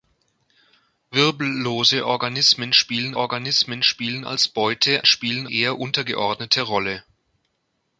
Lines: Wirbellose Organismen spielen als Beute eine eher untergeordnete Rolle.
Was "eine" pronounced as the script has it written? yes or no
no